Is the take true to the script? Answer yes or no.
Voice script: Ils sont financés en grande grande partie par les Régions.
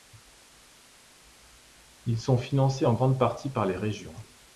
no